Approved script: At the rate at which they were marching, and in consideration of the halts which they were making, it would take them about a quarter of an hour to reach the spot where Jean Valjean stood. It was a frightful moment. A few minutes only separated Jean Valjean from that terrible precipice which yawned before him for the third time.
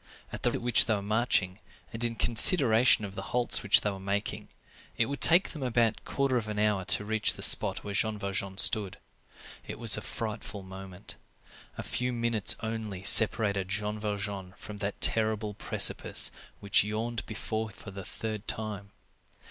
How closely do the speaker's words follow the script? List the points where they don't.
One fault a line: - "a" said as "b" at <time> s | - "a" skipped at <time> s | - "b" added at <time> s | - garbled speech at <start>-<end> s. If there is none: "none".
- "rate" skipped at 0.5 s
- "him" skipped at 17.7 s